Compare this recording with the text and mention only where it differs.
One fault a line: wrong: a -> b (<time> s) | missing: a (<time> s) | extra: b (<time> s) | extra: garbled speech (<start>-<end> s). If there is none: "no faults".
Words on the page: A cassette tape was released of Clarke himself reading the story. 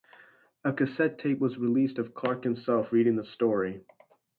no faults